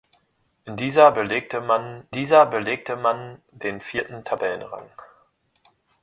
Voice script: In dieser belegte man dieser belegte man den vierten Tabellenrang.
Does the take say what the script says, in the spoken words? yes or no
yes